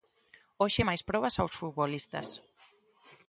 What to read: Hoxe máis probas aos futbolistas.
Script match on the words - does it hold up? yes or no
yes